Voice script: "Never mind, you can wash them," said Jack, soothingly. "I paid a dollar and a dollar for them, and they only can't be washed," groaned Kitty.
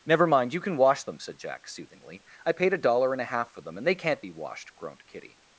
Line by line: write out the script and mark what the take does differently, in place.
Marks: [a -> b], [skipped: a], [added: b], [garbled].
"Never mind, you can wash them," said Jack, soothingly. "I paid a dollar and a [dollar -> half] for them, and they [skipped: only] can't be washed," groaned Kitty.